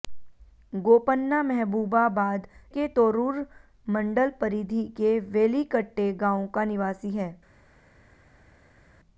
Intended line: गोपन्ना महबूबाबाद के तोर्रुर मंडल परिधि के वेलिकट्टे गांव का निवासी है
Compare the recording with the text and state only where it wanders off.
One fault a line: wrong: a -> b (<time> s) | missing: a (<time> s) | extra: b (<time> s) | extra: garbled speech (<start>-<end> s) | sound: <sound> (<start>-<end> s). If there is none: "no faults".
no faults